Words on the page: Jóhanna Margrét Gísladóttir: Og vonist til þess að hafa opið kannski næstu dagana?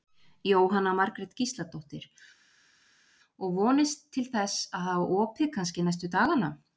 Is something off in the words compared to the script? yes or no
no